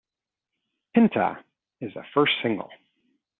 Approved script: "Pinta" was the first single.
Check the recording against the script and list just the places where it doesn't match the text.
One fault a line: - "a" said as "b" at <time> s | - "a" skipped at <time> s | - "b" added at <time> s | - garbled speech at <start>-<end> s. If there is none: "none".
- "was" said as "is" at 1.8 s